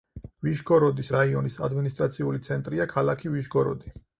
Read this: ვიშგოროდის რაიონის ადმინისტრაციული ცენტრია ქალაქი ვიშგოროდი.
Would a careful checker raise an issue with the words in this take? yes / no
no